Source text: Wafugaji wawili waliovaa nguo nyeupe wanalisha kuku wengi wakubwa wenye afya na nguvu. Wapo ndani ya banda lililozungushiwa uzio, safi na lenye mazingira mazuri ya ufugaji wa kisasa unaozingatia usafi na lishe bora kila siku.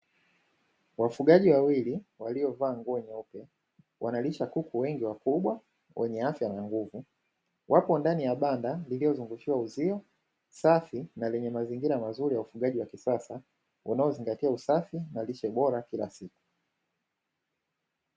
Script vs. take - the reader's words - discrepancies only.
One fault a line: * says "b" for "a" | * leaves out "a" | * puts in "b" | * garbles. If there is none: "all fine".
all fine